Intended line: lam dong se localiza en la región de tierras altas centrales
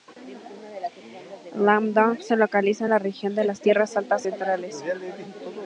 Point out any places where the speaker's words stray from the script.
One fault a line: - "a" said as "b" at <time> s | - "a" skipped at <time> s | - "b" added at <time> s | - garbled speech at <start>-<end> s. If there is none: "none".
- "las" added at 3.4 s